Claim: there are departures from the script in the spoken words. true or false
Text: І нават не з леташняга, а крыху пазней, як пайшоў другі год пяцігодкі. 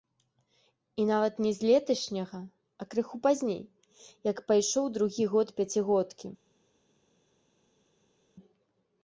false